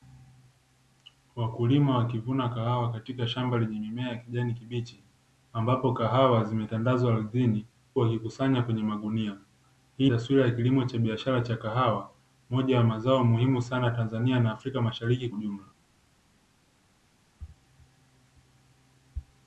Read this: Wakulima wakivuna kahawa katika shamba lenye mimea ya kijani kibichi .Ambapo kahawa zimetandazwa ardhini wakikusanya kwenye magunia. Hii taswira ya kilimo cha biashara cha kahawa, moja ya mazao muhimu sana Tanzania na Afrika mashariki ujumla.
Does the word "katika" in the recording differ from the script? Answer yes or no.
no